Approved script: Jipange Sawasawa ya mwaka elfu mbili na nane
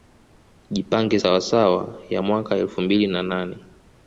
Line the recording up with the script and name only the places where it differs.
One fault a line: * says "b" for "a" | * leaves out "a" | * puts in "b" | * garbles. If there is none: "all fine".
all fine